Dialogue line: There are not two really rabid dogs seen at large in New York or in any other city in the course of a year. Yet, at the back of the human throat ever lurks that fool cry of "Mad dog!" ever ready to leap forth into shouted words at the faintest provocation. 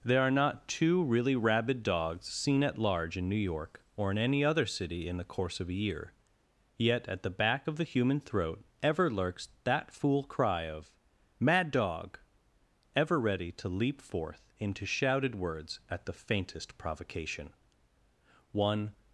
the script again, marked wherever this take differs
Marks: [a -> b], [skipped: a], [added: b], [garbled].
There are not two really rabid dogs seen at large in New York or in any other city in the course of a year. Yet, at the back of the human throat ever lurks that fool cry of "Mad dog!" ever ready to leap forth into shouted words at the faintest provocation. [added: One]